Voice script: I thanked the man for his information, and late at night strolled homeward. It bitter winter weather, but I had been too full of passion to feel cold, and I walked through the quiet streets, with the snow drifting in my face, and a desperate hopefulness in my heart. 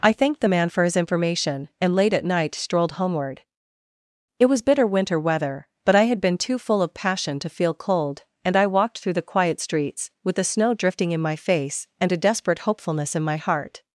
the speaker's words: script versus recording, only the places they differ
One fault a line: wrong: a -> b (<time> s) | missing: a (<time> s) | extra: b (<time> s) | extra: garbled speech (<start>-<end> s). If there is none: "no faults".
extra: was (4.5 s)